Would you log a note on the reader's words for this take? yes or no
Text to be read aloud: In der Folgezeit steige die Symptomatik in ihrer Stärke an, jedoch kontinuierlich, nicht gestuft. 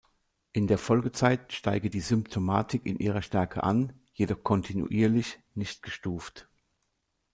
no